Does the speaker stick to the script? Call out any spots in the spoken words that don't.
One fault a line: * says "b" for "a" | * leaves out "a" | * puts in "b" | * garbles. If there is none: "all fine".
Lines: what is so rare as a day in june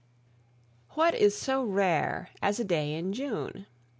all fine